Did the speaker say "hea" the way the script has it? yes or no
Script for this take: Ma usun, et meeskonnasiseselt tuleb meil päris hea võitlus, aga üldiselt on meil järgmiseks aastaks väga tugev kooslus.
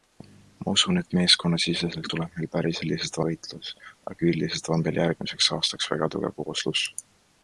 no